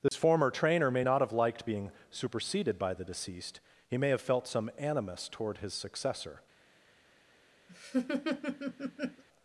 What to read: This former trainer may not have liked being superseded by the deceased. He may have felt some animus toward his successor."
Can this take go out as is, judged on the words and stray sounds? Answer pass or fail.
fail